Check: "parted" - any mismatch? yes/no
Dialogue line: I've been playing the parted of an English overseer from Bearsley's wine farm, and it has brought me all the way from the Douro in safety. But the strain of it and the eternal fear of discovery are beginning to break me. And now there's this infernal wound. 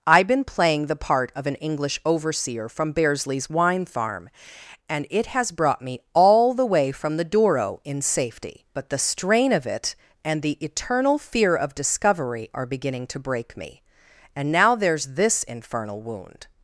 yes